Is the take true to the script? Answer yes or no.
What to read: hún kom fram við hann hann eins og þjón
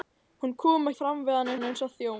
yes